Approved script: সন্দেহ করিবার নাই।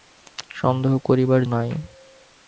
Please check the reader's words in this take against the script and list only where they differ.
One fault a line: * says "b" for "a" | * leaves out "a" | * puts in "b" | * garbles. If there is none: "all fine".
all fine